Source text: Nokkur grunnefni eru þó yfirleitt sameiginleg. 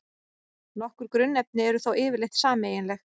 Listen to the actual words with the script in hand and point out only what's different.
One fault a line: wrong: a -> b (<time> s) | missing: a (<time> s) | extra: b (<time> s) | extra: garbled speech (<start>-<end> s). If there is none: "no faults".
no faults